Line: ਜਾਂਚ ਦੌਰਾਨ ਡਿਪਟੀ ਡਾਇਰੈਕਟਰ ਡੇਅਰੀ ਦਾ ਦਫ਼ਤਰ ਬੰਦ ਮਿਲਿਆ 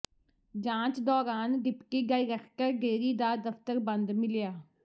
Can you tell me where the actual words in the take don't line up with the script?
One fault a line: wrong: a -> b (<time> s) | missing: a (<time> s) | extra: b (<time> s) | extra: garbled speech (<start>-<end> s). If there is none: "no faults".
no faults